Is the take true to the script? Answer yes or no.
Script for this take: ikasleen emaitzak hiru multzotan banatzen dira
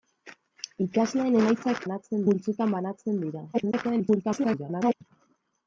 no